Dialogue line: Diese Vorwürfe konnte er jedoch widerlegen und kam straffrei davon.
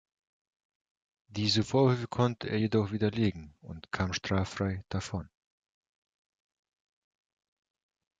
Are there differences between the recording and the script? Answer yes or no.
no